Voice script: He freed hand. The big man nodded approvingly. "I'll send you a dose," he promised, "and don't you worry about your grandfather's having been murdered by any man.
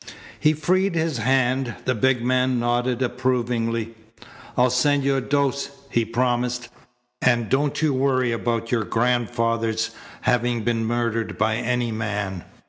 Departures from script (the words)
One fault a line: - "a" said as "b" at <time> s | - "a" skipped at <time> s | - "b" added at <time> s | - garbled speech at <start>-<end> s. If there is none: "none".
- "his" added at 0.9 s